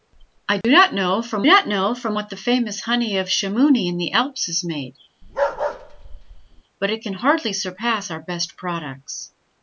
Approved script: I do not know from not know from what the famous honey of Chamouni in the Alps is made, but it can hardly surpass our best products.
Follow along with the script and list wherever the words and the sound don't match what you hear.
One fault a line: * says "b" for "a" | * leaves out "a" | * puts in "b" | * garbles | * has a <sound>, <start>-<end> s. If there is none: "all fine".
* has a dropout, 0.6-0.6 s
* has a bark, 5.2-6.6 s